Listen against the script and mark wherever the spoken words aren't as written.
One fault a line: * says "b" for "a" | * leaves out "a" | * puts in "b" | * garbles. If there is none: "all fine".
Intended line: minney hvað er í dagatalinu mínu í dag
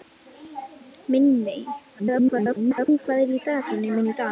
* garbles